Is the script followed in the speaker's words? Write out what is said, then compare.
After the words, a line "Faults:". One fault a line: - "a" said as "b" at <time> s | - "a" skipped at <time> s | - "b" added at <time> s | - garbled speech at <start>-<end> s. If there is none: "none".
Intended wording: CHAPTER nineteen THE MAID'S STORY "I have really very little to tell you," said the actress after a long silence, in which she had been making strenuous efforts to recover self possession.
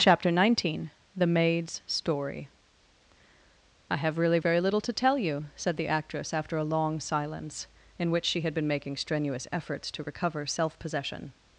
CHAPTER nineteen THE MAID'S STORY "I have really very little to tell you," said the actress after a long silence, in which she had been making strenuous efforts to recover self possession.
Faults:
none